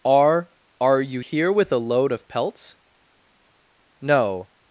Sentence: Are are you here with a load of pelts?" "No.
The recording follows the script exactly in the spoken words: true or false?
true